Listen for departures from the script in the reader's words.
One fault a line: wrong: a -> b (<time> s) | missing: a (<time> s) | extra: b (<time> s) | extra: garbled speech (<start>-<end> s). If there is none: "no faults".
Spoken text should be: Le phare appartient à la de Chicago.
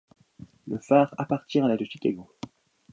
no faults